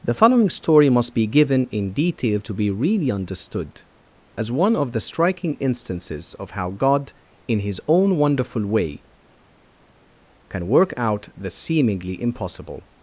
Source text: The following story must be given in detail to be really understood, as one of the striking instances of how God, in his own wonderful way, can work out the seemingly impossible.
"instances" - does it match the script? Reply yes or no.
yes